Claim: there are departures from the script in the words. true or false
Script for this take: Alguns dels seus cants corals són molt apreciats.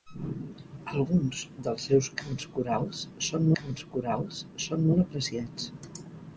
true